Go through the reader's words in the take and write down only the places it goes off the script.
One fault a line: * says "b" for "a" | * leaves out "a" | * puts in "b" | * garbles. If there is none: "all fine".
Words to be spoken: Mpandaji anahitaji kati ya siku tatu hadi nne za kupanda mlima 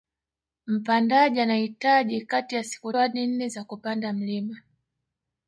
* leaves out "tatu"